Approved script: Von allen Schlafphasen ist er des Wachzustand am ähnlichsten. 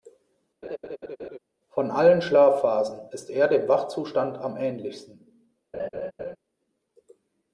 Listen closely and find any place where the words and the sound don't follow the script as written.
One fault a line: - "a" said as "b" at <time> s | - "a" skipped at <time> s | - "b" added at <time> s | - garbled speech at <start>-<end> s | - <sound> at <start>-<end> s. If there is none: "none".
- laugh at 0.6-1.4 s
- "des" said as "dem" at 3.5 s
- laugh at 5.7-6.4 s